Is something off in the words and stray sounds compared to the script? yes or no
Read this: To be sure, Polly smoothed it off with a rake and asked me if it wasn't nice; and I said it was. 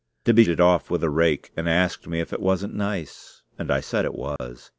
yes